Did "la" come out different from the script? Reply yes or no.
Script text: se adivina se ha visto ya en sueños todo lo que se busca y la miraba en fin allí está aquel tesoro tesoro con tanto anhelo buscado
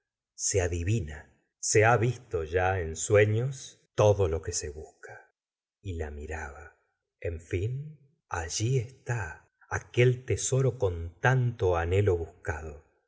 no